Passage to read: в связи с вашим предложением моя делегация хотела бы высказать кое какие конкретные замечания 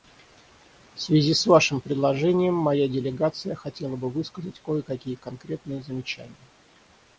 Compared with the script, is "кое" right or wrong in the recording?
right